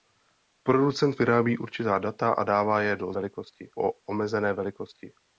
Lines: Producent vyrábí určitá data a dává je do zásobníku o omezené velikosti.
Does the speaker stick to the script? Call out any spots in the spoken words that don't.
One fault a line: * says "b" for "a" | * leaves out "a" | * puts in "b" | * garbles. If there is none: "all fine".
* says "velikosti" for "zásobníku"